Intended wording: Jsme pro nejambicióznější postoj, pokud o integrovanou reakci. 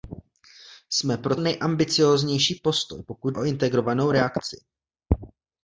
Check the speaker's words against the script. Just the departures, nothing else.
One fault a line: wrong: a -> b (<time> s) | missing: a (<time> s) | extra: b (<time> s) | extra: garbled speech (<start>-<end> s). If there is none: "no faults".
no faults